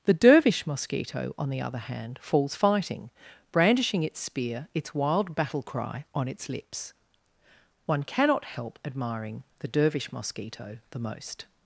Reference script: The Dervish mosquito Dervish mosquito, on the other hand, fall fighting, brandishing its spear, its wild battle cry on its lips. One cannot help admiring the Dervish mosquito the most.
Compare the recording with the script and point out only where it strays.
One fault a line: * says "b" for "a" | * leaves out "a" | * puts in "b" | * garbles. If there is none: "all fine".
* leaves out "Dervish mosquito"
* says "falls" for "fall"